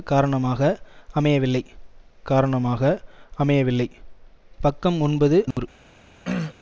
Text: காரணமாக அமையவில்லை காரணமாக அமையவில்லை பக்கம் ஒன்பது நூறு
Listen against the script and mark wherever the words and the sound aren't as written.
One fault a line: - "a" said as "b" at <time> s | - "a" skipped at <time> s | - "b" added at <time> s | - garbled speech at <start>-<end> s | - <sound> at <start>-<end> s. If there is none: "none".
- dropout at 5.5-5.6 s
- throat clearing at 6.2-6.5 s